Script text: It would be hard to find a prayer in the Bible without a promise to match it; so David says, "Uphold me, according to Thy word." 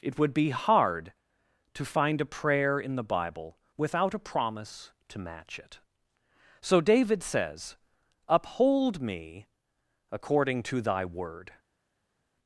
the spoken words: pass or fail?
pass